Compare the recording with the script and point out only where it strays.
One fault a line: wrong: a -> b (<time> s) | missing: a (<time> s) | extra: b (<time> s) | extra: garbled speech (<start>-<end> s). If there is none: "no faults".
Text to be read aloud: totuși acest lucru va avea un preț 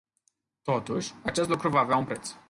no faults